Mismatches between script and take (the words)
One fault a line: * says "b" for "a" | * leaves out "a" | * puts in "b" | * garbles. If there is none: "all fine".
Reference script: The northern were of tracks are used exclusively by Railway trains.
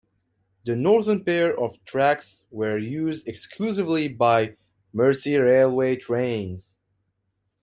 * says "pair" for "were"
* says "were" for "are"
* puts in "Mersey"